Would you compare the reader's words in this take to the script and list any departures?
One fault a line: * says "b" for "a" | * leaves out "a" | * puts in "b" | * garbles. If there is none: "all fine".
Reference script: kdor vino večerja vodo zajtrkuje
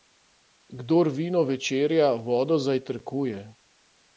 all fine